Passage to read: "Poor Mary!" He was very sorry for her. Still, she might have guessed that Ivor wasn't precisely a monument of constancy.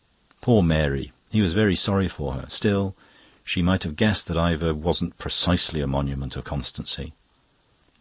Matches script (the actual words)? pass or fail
pass